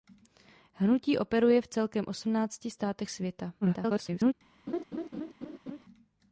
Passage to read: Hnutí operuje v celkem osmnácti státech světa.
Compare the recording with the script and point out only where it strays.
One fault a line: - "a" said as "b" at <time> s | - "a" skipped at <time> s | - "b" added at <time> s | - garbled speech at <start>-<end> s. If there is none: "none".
- garbled speech at 3.6-4.3 s